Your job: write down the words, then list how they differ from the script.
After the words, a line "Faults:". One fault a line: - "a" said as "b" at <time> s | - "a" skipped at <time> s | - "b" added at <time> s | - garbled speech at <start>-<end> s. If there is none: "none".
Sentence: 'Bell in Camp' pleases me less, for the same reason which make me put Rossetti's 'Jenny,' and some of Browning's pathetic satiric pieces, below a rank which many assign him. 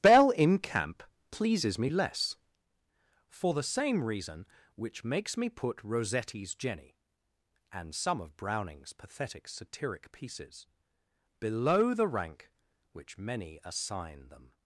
'Bell in Camp' pleases me less, for the same reason which makes me put Rossetti's 'Jenny,' and some of Browning's pathetic satiric pieces, below the rank which many assign them.
Faults:
- "make" said as "makes" at 5.0 s
- "a" said as "the" at 11.9 s
- "him" said as "them" at 14.3 s